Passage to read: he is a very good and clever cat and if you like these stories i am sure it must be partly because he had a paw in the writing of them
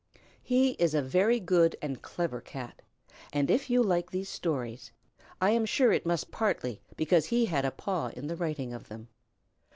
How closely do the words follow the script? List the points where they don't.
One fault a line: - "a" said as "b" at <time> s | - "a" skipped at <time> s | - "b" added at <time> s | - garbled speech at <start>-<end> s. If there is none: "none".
- "be" skipped at 6.3 s